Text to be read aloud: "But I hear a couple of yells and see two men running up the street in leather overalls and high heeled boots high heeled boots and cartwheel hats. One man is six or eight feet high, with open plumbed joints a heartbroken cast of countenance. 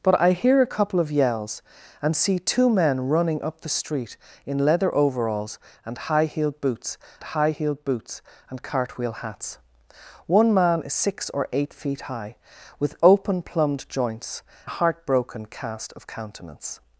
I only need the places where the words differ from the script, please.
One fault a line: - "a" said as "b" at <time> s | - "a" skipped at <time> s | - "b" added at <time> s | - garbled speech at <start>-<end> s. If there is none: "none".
none